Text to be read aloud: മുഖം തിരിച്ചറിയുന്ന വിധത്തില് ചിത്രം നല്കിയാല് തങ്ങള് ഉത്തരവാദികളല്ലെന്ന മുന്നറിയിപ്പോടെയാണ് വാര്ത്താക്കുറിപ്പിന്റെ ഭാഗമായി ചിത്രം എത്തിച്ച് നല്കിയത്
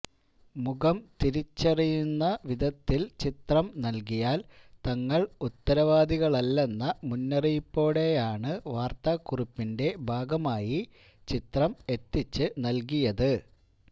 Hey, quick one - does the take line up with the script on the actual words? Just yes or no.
yes